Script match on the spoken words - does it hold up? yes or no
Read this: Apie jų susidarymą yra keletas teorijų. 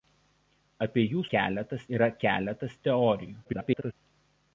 no